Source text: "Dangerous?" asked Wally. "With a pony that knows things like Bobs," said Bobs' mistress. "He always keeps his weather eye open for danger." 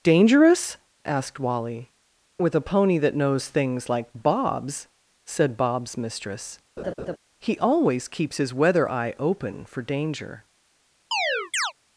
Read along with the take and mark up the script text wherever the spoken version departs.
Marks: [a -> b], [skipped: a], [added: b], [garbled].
"Dangerous?" asked Wally. "With a pony that knows things like Bobs," said Bobs' mistress. "He always keeps his weather eye open for danger."